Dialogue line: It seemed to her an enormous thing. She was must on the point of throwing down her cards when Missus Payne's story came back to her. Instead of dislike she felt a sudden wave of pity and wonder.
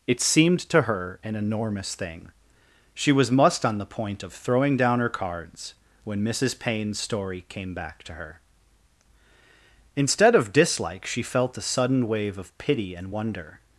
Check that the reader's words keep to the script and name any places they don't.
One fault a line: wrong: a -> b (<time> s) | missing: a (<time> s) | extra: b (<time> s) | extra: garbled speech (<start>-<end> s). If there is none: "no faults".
no faults